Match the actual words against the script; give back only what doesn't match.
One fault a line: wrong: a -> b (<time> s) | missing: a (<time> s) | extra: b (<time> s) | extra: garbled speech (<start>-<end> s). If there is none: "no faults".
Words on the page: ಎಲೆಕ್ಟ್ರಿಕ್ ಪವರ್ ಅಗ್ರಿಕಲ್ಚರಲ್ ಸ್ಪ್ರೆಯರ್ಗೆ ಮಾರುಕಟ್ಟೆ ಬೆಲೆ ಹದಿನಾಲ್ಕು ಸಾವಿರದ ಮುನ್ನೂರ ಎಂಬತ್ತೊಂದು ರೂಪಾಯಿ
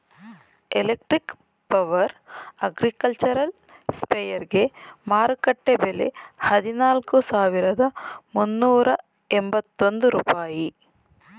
no faults